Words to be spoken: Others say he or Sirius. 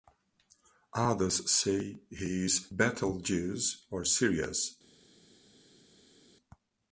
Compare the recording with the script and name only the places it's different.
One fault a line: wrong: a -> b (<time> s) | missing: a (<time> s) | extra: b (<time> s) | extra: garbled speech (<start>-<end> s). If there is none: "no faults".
extra: is Betelgeuse (2.4 s)